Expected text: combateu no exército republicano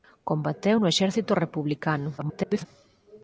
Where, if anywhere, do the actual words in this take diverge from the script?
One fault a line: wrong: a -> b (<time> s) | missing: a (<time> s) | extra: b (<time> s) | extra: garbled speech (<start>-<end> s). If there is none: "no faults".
extra: garbled speech (2.2-2.7 s)